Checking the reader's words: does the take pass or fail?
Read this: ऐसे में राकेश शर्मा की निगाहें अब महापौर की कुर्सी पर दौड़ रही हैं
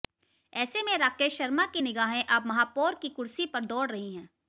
pass